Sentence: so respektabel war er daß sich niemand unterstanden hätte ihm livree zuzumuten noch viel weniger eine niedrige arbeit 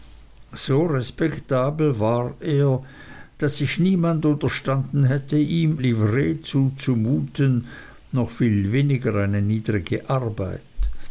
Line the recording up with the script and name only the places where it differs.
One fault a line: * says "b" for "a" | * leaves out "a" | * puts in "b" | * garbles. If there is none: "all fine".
all fine